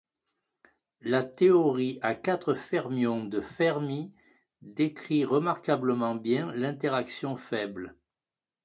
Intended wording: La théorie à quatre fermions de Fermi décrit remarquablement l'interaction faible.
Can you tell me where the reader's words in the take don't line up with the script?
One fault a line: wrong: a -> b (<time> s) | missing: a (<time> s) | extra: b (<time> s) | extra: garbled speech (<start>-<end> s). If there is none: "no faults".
extra: bien (6.1 s)